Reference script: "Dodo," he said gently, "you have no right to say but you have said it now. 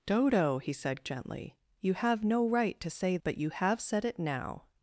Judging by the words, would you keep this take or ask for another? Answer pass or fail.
pass